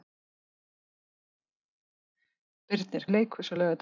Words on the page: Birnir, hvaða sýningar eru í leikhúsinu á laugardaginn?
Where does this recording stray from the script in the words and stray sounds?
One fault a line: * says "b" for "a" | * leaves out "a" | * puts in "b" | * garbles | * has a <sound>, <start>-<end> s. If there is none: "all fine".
* leaves out "hvaða sýningar eru"